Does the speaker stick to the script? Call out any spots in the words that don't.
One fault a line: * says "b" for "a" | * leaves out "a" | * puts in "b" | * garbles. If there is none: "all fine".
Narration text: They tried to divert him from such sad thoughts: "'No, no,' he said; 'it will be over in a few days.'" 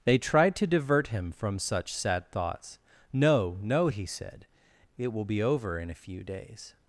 all fine